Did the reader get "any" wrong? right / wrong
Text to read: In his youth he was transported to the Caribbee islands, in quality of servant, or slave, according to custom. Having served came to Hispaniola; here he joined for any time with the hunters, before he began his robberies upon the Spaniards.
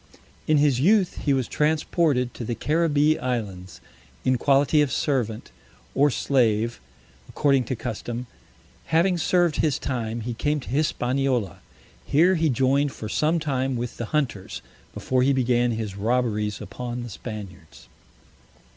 wrong